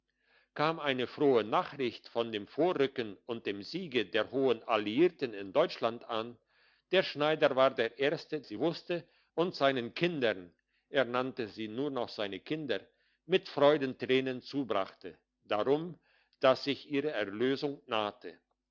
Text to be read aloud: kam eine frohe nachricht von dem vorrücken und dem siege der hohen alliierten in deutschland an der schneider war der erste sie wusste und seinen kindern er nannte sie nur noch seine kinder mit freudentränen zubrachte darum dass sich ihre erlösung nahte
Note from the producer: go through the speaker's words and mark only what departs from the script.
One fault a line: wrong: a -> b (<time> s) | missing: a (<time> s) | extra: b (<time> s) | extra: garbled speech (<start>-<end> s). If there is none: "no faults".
no faults